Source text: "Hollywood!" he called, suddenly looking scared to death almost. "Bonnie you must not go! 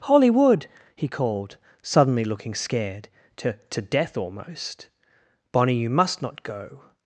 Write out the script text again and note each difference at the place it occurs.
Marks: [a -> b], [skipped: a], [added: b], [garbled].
"Hollywood!" he called, suddenly looking scared to [added: to] death almost. "Bonnie you must not go!